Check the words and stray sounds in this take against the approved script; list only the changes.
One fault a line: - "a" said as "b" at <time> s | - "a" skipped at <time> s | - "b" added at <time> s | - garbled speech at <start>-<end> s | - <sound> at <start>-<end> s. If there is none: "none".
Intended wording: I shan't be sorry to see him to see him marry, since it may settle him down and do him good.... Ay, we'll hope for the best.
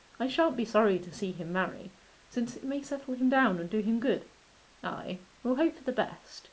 - "to see him" skipped at 1.5 s